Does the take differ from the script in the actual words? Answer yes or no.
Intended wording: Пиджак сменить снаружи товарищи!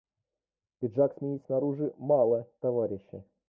yes